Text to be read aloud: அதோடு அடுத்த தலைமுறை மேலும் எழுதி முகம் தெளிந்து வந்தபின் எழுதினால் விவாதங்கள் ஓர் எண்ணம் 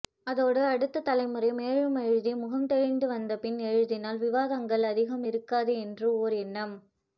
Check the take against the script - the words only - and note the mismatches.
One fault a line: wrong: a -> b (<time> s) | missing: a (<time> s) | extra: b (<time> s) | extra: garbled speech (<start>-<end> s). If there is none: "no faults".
extra: அதிகம் இருக்காது என்று (4.9 s)